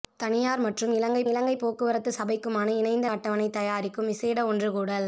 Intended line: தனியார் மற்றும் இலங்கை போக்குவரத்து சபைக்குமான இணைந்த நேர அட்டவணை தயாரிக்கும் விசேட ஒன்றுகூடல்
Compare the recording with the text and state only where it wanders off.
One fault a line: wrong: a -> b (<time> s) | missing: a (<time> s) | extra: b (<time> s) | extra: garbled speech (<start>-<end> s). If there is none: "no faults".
extra: இலங்கை (1.3 s)
missing: நேர (3.1 s)